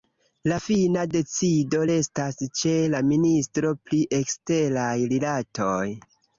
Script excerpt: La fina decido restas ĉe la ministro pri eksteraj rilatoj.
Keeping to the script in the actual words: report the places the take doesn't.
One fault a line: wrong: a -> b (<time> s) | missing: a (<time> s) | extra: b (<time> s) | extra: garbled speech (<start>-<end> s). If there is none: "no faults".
no faults